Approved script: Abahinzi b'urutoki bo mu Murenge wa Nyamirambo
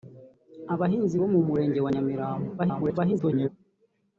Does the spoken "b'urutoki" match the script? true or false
false